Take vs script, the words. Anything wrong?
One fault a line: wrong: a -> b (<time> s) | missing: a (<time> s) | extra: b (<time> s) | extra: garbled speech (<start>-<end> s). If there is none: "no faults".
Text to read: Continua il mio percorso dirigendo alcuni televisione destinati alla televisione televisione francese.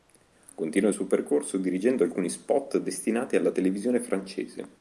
wrong: mio -> suo (0.9 s)
wrong: televisione -> spot (2.3 s)
missing: televisione (4.0 s)